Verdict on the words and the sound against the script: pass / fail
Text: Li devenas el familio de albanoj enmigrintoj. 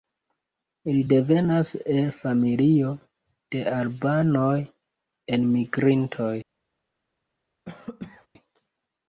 fail